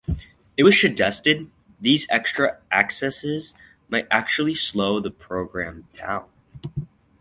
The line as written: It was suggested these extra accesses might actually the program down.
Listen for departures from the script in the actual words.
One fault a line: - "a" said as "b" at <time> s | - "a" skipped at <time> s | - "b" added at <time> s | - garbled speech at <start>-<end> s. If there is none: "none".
- "slow" added at 4.5 s